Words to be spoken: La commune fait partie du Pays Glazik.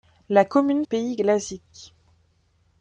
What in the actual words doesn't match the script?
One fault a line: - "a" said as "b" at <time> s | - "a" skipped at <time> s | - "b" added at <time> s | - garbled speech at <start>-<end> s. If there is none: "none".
- "fait partie du" skipped at 0.8 s